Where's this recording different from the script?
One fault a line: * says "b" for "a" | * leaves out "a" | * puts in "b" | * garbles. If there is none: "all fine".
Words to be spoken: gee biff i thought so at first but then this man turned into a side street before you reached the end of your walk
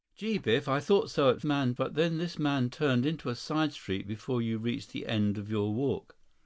* says "man" for "first"